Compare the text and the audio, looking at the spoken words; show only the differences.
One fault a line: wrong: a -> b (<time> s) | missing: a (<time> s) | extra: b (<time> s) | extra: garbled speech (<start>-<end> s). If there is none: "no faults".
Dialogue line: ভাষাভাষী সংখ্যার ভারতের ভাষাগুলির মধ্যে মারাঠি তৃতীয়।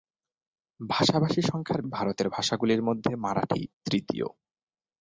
no faults